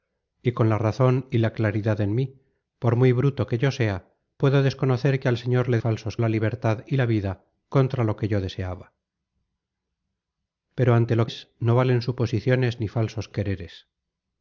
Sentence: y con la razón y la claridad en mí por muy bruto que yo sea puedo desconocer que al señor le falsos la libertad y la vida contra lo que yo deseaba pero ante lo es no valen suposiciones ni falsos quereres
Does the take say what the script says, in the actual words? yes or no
yes